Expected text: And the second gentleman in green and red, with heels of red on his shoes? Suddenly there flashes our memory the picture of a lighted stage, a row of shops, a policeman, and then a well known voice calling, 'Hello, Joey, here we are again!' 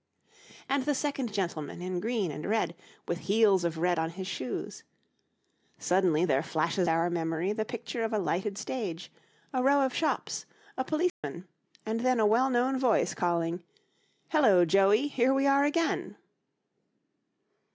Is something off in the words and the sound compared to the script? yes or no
yes